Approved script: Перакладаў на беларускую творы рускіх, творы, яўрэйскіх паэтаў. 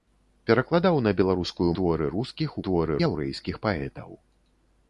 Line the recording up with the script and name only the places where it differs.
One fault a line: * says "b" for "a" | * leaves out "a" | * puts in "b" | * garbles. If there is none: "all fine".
all fine